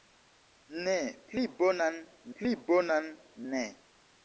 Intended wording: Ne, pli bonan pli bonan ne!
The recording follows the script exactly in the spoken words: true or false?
true